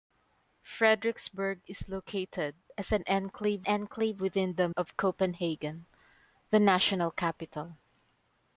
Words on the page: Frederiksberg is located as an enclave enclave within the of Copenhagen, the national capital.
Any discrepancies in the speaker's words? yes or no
no